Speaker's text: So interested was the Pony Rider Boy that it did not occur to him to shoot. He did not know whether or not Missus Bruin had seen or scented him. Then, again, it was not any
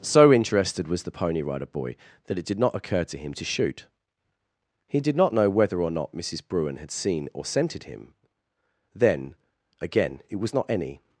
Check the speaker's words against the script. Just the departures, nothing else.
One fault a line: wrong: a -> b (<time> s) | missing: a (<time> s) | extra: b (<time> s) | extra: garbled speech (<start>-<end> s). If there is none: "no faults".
no faults